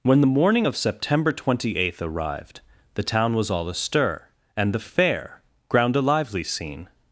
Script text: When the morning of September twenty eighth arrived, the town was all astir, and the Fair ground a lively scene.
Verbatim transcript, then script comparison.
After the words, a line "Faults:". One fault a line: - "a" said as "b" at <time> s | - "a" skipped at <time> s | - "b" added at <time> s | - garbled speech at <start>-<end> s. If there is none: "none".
When the morning of September twenty eighth arrived, the town was all astir, and the Fair ground a lively scene.
Faults:
none